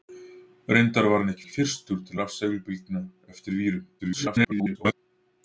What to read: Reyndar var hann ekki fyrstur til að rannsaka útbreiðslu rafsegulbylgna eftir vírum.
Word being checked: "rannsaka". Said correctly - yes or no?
no